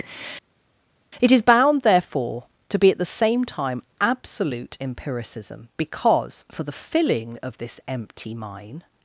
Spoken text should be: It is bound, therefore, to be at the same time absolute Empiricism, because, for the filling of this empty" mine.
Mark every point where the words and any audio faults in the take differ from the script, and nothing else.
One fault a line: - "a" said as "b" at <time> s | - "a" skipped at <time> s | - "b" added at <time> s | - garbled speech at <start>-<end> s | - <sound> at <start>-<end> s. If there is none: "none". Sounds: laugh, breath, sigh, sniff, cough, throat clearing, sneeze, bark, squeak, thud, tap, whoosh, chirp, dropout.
none